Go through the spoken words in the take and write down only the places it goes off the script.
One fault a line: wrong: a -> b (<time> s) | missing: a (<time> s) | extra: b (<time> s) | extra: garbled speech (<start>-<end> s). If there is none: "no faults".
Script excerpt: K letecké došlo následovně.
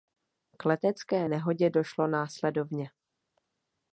extra: nehodě (1.3 s)